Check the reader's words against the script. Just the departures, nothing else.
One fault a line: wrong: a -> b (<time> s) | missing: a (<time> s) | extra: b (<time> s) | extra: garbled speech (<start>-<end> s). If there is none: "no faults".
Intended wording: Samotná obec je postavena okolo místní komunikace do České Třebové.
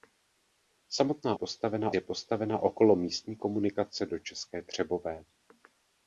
wrong: obec -> postavena (1.3 s)